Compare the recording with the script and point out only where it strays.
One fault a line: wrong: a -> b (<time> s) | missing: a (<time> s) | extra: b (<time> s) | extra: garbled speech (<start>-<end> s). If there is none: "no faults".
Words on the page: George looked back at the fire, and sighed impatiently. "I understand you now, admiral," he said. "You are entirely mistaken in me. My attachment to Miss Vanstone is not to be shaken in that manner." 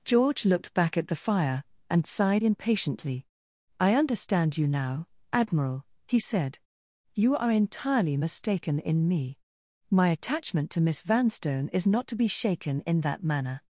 no faults